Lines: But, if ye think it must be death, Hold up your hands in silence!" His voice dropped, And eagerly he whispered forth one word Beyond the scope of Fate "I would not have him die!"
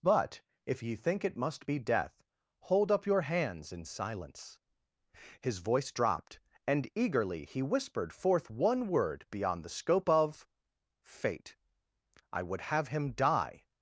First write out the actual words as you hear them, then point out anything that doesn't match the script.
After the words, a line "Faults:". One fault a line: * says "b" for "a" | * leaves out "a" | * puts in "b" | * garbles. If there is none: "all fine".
But, if ye think it must be death, Hold up your hands in silence!" His voice dropped, And eagerly he whispered forth one word Beyond the scope of Fate "I would have him die!"
Faults:
* leaves out "not"